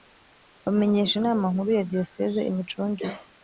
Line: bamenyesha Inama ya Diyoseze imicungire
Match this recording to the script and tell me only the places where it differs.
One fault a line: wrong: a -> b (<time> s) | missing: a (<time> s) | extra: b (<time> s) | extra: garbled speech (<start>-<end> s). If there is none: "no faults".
extra: nkuru (1.5 s)